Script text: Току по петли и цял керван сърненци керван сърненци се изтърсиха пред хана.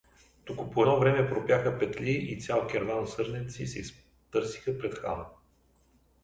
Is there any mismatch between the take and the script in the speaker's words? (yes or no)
yes